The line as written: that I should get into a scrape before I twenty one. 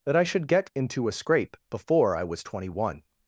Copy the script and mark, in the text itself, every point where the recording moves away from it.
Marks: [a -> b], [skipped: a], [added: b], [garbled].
that I should get into a scrape before I [added: was] twenty one.